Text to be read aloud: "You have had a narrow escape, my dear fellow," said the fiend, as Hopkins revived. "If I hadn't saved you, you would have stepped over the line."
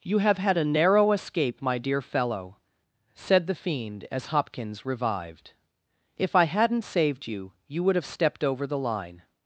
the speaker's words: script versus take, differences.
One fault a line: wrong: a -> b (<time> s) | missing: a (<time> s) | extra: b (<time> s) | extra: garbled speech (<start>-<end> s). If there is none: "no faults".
no faults